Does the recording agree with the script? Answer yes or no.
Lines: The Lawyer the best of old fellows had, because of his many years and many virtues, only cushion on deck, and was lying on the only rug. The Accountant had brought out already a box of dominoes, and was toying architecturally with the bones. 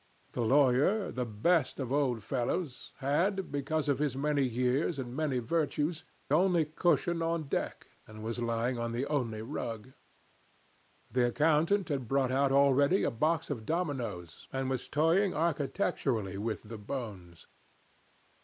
yes